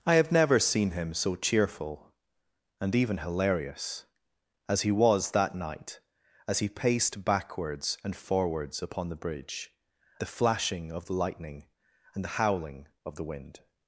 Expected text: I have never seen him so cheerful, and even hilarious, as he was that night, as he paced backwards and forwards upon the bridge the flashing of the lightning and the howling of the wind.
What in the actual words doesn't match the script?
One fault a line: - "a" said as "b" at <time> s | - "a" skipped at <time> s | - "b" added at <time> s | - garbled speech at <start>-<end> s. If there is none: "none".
none